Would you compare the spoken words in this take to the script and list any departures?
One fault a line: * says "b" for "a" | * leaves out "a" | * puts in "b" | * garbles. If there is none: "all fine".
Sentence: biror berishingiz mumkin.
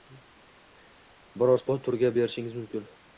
* puts in "sport turiga"